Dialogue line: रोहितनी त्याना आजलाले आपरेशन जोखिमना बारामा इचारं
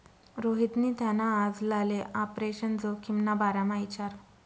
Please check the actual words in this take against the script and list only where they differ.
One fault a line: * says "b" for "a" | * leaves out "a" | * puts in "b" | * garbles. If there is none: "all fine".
all fine